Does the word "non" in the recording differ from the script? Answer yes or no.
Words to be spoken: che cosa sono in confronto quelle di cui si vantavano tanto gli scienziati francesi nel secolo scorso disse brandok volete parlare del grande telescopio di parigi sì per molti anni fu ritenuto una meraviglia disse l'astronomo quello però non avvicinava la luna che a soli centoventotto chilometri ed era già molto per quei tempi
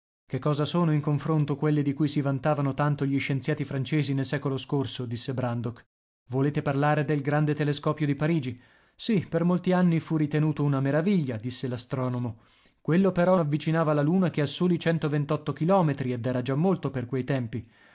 yes